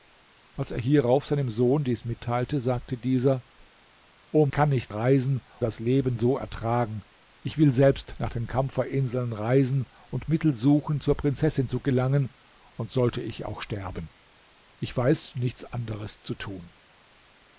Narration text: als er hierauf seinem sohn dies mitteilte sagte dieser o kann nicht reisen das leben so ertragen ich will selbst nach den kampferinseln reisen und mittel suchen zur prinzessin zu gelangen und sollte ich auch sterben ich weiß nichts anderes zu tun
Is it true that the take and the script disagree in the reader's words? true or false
false